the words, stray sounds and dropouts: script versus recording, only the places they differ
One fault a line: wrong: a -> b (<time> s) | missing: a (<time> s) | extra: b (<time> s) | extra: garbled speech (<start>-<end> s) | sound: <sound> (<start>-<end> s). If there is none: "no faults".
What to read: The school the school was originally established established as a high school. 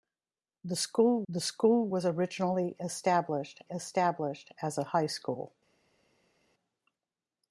no faults